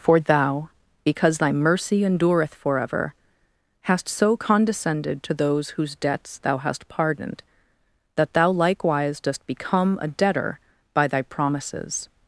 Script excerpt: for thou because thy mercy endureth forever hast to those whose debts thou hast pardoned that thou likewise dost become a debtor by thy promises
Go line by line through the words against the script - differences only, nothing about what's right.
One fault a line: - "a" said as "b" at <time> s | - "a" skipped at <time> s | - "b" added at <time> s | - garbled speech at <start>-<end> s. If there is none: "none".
- "so condescended" added at 4.1 s